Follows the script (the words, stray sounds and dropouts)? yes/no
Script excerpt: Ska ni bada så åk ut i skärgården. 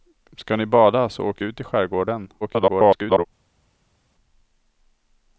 no